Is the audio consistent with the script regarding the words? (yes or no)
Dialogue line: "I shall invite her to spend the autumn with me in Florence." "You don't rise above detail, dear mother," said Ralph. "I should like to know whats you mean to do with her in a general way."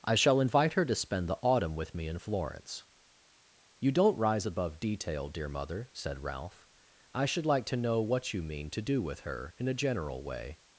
no